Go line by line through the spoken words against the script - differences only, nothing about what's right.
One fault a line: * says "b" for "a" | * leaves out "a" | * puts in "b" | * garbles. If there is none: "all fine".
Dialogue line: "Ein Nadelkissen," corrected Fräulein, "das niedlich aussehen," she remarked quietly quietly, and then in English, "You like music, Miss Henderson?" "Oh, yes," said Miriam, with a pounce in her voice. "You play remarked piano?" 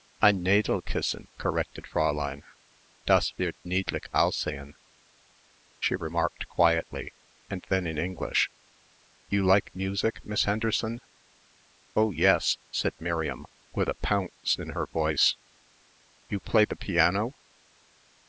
* puts in "wird"
* leaves out "quietly"
* says "the" for "remarked"